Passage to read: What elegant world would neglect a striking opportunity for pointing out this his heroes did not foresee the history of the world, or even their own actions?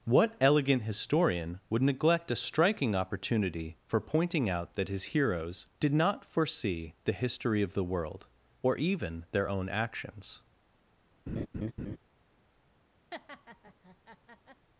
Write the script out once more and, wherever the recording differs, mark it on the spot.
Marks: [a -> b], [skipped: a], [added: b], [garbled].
What elegant [world -> historian] would neglect a striking opportunity for pointing out [this -> that] his heroes did not foresee the history of the world, or even their own actions?